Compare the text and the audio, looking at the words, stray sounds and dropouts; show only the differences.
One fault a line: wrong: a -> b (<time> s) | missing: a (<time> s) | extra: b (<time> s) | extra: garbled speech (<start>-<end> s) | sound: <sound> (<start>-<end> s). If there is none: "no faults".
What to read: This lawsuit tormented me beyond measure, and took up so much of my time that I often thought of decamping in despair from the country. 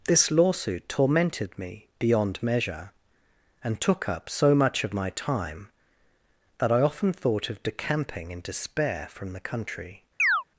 sound: chirp (10.2-10.4 s)